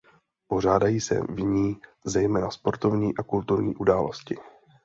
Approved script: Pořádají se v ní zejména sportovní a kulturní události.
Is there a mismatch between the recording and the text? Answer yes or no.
no